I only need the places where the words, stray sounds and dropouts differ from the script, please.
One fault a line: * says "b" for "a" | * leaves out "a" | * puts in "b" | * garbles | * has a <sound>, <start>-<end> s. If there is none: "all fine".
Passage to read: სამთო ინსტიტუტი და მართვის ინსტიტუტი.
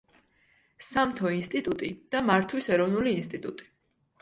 * puts in "ეროვნული"